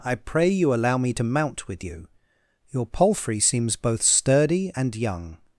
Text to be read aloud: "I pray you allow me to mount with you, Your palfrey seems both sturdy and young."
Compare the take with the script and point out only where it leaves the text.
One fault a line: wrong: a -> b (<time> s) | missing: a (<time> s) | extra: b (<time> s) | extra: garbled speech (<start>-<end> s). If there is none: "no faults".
no faults